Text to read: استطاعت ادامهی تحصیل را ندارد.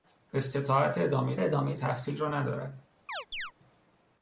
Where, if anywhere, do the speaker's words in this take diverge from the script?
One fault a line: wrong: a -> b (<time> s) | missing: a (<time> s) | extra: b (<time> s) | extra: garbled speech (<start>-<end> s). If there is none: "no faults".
extra: ادامهی (1.4 s)